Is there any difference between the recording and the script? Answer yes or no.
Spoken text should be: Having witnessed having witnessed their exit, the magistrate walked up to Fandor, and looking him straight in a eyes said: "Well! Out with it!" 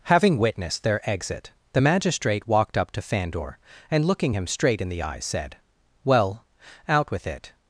yes